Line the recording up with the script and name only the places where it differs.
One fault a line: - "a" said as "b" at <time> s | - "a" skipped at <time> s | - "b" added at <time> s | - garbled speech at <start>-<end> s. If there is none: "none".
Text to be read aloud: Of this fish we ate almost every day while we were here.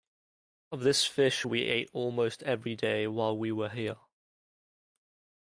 none